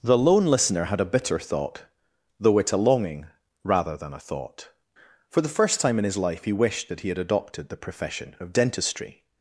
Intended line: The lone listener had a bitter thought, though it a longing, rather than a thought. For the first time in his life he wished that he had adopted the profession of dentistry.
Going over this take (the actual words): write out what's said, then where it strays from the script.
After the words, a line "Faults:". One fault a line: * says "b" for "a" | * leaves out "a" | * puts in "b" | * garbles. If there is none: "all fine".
The lone listener had a bitter thought, though it a longing, rather than a thought. For the first time in his life he wished that he had adopted the profession of dentistry.
Faults:
all fine